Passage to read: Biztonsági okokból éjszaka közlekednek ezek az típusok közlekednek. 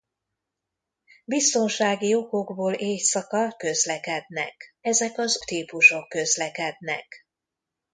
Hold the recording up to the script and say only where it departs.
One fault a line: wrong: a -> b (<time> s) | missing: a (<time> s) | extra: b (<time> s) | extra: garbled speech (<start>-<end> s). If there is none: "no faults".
no faults